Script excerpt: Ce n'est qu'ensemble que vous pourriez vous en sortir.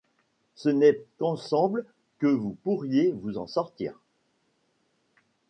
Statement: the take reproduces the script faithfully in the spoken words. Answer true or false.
true